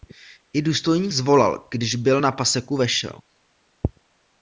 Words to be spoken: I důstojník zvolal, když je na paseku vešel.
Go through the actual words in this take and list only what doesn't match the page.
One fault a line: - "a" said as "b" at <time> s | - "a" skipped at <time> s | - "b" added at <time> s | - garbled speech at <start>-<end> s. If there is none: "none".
- "je" said as "byl" at 2.0 s